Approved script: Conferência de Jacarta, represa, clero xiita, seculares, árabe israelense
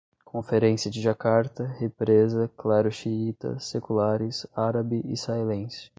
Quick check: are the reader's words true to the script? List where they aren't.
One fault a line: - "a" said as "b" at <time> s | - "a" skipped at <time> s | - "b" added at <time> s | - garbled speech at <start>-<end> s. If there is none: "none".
none